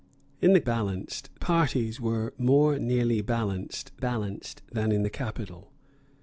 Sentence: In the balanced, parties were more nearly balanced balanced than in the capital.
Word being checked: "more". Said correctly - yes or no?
yes